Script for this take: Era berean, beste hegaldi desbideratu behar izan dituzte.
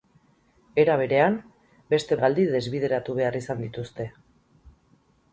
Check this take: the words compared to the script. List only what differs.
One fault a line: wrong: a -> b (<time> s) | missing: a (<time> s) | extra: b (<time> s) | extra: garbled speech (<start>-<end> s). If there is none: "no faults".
no faults